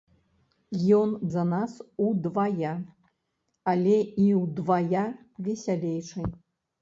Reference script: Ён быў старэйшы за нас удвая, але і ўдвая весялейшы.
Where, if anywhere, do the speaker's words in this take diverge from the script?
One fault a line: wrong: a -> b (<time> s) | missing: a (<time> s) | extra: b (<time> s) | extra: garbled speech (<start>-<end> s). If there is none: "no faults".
missing: быў старэйшы (1.1 s)